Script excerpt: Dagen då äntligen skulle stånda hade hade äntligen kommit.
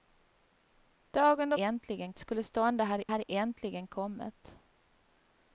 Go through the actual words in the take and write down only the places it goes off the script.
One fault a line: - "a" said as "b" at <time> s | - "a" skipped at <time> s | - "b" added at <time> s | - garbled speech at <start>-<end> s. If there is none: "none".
none